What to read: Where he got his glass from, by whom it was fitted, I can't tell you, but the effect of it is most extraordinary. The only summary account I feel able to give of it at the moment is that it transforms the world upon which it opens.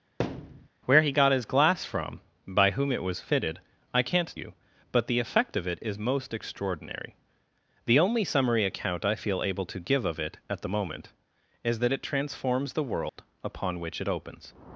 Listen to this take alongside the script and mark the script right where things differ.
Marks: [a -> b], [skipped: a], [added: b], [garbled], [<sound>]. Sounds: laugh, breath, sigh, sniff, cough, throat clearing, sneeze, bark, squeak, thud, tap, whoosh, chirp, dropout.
[thud] Where he got his glass from, by whom it was fitted, I can't [skipped: tell] you, but the effect of it is most extraordinary. The only summary account I feel able to give of it at the moment is that it transforms the world [dropout] upon which it opens.